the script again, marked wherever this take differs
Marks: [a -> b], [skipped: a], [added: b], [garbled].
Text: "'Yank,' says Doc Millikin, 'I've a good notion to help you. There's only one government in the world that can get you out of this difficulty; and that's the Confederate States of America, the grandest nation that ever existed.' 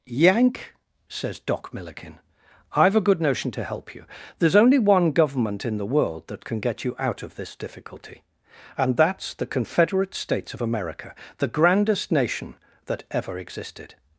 "'Yank,' says Doc Millikin, 'I've a good notion to help you. There's only one government in the world that can get you out of this difficulty; and that's the Confederate States of America, the grandest nation that ever existed.'